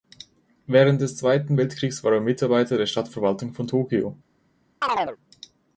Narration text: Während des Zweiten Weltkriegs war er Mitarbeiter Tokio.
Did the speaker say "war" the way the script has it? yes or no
yes